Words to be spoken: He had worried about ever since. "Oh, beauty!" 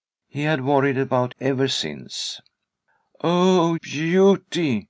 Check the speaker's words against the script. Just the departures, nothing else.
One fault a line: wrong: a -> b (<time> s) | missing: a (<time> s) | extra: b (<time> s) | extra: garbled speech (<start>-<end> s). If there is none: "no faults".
no faults